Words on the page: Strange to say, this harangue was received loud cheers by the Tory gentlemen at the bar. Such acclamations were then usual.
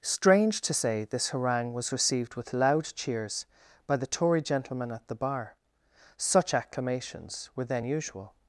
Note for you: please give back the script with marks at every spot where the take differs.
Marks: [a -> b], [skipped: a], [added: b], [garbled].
Strange to say, this harangue was received [added: with] loud cheers by the Tory gentlemen at the bar. Such acclamations were then usual.